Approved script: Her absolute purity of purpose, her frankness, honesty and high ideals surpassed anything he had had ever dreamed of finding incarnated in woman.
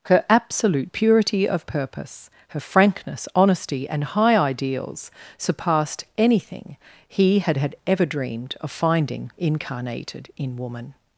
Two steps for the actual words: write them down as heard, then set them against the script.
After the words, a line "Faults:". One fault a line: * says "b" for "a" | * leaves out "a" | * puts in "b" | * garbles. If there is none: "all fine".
Her absolute purity of purpose, her frankness, honesty and high ideals surpassed anything he had had ever dreamed of finding incarnated in woman.
Faults:
all fine